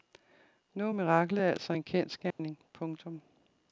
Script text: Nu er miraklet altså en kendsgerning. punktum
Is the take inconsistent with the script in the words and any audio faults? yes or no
yes